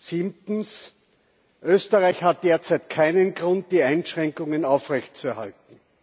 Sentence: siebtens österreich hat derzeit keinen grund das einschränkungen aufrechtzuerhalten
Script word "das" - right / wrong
wrong